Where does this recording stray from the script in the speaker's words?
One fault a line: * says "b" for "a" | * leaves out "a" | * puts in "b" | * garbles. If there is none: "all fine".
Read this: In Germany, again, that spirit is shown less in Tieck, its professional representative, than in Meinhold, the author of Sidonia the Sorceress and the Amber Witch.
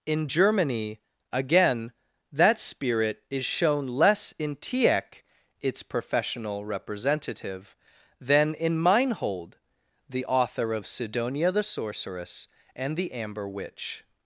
all fine